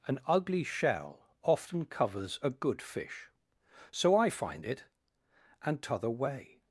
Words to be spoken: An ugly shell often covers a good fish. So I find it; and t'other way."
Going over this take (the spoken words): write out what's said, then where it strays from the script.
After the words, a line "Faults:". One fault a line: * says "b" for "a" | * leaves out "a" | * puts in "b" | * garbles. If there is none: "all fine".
An ugly shell often covers a good fish. So I find it; and t'other way."
Faults:
all fine